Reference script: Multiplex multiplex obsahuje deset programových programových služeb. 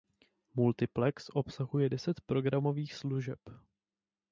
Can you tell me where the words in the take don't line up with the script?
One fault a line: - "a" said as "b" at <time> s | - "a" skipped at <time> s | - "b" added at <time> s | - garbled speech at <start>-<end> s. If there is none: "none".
- "multiplex" skipped at 1.3 s
- "programových" skipped at 2.9 s